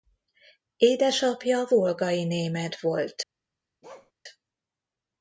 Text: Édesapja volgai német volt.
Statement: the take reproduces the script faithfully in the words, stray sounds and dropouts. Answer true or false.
false